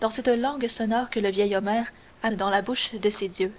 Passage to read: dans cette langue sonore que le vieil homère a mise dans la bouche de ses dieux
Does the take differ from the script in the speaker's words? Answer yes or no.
yes